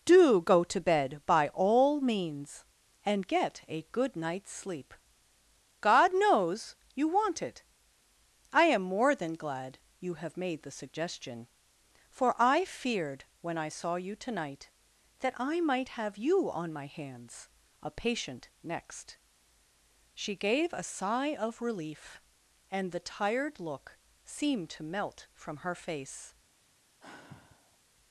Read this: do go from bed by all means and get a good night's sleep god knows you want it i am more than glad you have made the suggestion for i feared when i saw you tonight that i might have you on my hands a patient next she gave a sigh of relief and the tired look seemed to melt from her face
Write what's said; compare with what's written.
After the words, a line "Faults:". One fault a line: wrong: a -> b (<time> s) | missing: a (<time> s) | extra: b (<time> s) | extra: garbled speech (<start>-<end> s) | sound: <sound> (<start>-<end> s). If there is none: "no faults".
do go to bed by all means and get a good night's sleep god knows you want it i am more than glad you have made the suggestion for i feared when i saw you tonight that i might have you on my hands a patient next she gave a sigh of relief and the tired look seemed to melt from her face
Faults:
wrong: from -> to (0.6 s)
sound: sigh (27.0-27.8 s)